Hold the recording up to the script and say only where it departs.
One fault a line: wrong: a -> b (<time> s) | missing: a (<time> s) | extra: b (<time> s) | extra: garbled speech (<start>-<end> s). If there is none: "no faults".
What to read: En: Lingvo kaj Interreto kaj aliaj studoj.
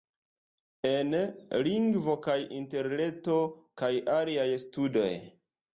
no faults